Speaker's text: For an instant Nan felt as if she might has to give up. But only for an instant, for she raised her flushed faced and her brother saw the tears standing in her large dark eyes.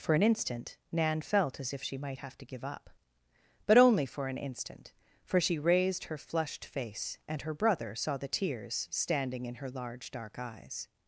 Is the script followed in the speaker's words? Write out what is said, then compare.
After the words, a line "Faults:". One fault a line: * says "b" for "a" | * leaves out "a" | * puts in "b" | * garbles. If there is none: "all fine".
For an instant Nan felt as if she might have to give up. But only for an instant, for she raised her flushed face and her brother saw the tears standing in her large dark eyes.
Faults:
* says "have" for "has"
* says "face" for "faced"